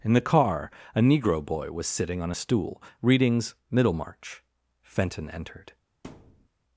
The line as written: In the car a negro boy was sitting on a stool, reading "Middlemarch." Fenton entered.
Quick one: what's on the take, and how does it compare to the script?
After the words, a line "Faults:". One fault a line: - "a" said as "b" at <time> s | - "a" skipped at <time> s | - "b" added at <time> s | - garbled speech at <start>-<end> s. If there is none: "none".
In the car a negro boy was sitting on a stool, readings "Middlemarch." Fenton entered.
Faults:
- "reading" said as "readings" at 3.0 s